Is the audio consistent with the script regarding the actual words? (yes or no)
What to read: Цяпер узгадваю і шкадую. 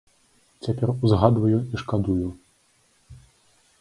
yes